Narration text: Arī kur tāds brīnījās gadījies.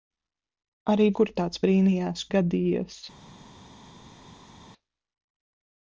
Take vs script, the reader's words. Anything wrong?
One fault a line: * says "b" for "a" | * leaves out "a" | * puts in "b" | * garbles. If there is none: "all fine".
all fine